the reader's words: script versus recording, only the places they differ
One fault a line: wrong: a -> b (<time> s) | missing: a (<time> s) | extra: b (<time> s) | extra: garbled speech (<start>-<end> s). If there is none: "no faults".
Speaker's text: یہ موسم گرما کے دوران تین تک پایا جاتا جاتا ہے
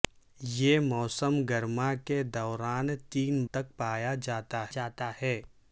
no faults